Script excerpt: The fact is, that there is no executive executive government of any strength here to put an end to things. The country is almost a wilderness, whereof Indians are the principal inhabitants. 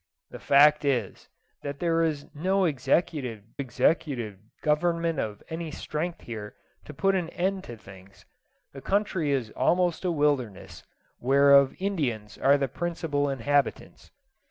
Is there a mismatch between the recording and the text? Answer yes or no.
no